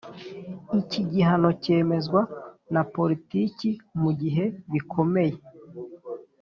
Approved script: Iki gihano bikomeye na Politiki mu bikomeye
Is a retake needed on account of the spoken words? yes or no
yes